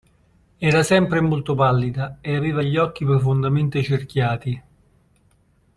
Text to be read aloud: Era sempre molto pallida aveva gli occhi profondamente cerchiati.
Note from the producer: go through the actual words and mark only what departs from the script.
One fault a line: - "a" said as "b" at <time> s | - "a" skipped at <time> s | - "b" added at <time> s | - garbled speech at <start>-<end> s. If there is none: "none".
- "e" added at 2.2 s